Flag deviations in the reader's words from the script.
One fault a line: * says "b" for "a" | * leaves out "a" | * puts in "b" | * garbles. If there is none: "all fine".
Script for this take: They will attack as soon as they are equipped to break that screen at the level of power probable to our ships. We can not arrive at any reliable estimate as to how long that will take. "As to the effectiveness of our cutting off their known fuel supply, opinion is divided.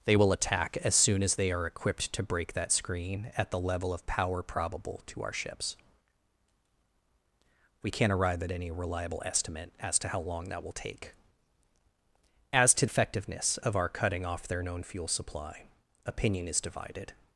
* leaves out "the"